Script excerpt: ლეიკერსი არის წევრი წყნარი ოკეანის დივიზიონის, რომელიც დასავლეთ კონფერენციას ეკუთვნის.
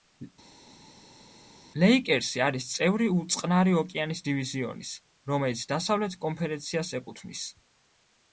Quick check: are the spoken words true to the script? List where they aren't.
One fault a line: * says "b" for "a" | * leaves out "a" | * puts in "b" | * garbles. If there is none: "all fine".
all fine